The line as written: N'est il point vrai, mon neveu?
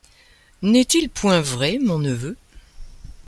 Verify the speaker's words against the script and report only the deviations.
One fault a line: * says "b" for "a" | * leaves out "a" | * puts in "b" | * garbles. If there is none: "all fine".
all fine